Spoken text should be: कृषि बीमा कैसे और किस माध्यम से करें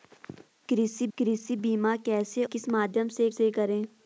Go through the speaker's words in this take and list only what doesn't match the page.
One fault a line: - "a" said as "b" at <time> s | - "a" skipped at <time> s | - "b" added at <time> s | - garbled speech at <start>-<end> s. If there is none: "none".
- "कृषि" added at 1.2 s
- "और" skipped at 2.5 s
- "से" added at 3.3 s